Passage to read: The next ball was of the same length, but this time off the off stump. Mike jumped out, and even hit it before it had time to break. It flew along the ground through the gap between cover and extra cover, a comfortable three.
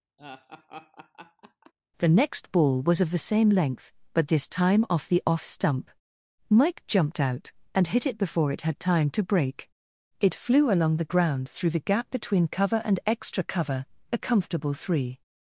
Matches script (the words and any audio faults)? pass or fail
fail